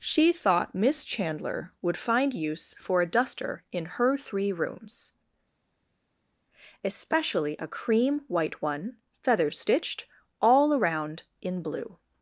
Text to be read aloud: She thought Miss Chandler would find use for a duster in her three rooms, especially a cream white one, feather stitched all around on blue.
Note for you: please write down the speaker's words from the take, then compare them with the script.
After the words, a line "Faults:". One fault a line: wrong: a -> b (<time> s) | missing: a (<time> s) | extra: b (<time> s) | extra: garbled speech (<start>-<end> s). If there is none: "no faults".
She thought Miss Chandler would find use for a duster in her three rooms, especially a cream white one, feather stitched all around in blue.
Faults:
wrong: on -> in (11.4 s)